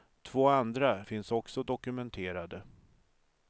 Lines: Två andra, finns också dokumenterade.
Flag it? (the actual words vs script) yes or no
no